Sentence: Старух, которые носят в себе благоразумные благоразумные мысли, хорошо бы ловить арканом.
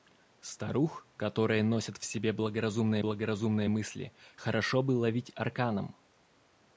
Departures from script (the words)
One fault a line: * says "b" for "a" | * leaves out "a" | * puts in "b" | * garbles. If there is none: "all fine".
all fine